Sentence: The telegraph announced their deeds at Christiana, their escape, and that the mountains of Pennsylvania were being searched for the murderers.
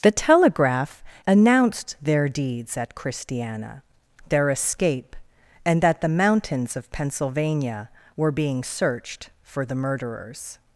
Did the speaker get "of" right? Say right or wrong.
right